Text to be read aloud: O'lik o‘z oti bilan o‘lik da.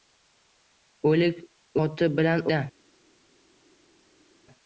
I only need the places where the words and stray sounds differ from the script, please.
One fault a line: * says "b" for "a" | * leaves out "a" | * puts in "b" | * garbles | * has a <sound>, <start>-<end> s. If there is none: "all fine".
* leaves out "o‘z"
* leaves out "o‘lik"